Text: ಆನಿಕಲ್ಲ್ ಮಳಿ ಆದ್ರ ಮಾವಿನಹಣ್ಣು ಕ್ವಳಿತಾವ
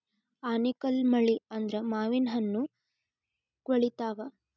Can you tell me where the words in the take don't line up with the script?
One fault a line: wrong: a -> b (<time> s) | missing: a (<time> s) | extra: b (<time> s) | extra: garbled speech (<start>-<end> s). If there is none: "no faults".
no faults